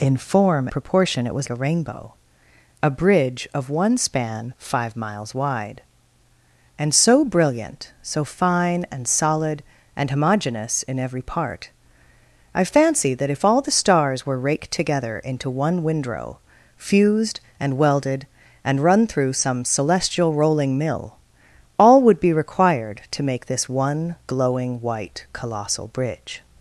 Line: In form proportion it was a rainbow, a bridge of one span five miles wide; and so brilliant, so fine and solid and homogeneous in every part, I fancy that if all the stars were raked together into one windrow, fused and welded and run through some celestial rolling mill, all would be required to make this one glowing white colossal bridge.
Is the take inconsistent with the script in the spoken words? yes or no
no